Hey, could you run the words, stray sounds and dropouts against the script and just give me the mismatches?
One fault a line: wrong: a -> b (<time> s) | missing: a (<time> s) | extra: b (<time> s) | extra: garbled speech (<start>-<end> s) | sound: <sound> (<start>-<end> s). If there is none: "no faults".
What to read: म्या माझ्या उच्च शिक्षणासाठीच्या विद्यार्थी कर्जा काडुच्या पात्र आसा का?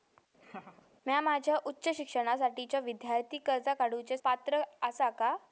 sound: laugh (0.4-0.9 s)